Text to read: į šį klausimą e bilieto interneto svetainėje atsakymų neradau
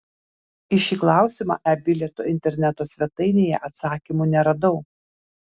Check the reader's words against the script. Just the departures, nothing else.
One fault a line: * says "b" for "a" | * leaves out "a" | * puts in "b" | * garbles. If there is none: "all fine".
all fine